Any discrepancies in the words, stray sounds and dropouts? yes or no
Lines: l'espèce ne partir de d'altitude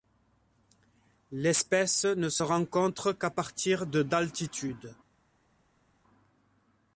yes